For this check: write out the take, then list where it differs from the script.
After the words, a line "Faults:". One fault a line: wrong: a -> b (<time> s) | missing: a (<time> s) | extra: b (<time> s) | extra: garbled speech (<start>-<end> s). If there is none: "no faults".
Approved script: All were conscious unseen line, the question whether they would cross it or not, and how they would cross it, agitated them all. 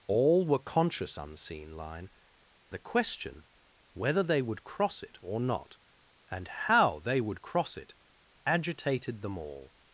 All were conscious unseen line, the question whether they would cross it or not, and how they would cross it, agitated them all.
Faults:
no faults